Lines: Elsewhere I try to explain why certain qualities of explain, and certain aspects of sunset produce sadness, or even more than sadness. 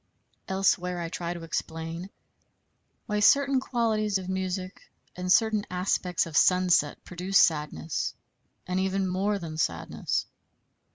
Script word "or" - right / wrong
wrong